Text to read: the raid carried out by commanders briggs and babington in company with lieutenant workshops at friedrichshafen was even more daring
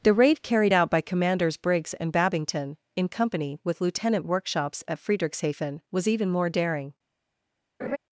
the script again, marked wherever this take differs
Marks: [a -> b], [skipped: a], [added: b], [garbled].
the raid carried out by commanders briggs and babington in company with lieutenant workshops at friedrichshafen was even more daring